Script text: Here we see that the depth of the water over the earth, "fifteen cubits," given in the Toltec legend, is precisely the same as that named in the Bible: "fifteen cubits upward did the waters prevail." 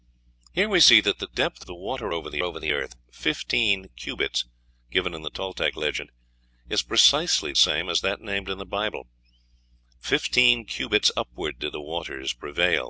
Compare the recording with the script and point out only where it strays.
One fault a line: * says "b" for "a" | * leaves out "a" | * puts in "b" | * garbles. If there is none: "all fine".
* leaves out "of"
* puts in "over the"
* leaves out "the"